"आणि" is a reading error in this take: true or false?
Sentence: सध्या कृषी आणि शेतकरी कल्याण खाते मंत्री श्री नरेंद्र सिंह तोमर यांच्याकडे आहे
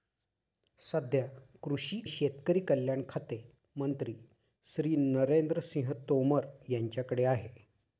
true